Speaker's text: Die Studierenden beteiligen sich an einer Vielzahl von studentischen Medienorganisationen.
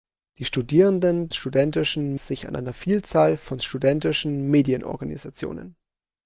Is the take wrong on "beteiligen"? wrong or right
wrong